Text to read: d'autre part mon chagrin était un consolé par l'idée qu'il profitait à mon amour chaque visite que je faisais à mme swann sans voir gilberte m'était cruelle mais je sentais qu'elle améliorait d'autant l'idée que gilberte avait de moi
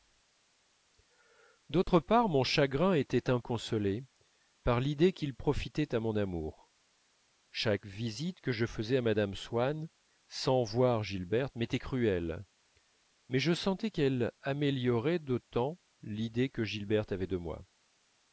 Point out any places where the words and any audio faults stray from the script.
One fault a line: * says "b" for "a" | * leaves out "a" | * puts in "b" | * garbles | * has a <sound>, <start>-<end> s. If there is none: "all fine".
* has a dropout, 1.8-1.9 s